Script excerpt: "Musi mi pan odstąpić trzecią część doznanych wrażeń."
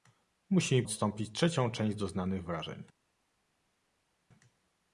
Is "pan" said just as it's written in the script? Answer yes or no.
no